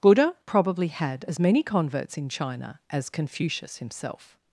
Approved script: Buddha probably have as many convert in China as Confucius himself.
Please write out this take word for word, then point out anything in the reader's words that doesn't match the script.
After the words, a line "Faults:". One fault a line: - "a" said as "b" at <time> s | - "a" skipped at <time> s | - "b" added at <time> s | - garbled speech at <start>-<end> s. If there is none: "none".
Buddha probably had as many converts in China as Confucius himself.
Faults:
- "have" said as "had" at 0.9 s
- "convert" said as "converts" at 1.6 s